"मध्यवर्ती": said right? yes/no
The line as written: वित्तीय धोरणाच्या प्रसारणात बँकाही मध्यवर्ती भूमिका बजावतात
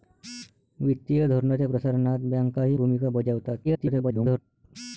no